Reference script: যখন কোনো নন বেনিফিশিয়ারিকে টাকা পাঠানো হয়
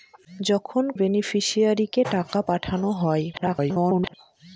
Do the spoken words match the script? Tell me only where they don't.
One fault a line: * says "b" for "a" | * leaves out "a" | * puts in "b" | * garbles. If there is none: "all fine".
* leaves out "কোনো নন"
* garbles